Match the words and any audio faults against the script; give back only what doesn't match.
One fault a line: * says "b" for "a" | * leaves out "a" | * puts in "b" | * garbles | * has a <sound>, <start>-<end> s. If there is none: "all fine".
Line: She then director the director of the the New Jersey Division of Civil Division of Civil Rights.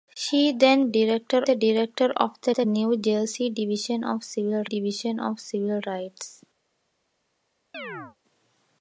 * has a chirp, 7.7-8.2 s